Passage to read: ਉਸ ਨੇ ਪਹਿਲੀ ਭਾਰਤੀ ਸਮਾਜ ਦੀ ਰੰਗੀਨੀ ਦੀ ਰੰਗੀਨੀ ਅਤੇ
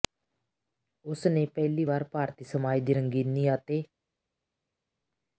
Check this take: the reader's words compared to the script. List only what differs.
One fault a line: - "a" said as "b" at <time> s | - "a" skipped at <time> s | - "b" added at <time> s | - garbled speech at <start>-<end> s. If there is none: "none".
- "ਵਾਰ" added at 1.8 s
- "ਦੀ ਰੰਗੀਨੀ" skipped at 3.5 s